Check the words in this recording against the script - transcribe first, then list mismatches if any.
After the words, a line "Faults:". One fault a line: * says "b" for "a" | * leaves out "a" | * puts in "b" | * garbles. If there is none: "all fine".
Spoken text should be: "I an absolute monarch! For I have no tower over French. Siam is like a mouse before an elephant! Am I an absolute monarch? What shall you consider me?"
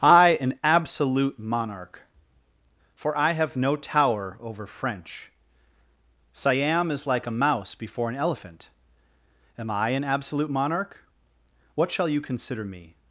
"I an absolute monarch! For I have no tower over French. Siam is like a mouse before an elephant! Am I an absolute monarch? What shall you consider me?"
Faults:
all fine